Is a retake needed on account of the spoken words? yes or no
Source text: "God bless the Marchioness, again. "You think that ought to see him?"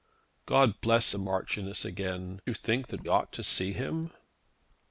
no